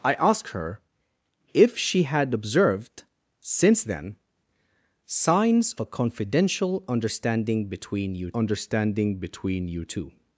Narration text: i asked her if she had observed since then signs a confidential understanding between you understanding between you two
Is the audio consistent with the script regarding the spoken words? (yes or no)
yes